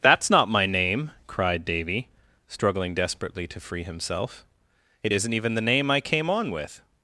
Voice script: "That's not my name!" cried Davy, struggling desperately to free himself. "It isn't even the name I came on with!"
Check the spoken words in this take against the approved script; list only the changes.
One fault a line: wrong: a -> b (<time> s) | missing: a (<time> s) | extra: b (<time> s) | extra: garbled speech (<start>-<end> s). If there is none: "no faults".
no faults